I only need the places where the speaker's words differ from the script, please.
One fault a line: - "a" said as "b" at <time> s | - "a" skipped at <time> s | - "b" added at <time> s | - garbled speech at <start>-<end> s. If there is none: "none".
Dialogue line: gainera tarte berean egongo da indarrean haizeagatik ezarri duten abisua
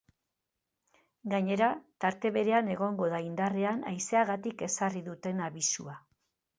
none